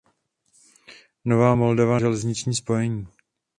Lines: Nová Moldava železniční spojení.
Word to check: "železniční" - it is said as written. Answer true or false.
true